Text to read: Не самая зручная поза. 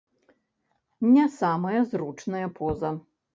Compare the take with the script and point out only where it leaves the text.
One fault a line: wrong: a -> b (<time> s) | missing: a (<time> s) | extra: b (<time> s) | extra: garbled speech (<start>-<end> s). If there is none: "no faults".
no faults